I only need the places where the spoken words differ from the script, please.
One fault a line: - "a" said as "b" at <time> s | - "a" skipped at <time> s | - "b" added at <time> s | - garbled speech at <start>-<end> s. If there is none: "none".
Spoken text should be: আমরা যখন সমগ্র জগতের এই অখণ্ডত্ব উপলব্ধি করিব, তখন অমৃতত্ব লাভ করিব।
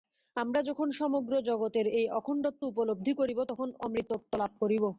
none